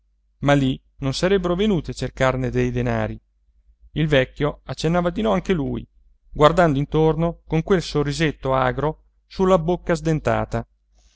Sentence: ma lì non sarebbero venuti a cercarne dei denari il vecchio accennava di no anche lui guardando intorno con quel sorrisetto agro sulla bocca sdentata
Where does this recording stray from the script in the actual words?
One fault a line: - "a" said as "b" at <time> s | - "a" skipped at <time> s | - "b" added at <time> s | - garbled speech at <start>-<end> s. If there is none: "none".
none